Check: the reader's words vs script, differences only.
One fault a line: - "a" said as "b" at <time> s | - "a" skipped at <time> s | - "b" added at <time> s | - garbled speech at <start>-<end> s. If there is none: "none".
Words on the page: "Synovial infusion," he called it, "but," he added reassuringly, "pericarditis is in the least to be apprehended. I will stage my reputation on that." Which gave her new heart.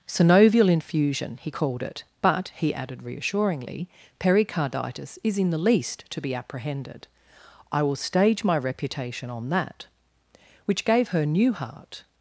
none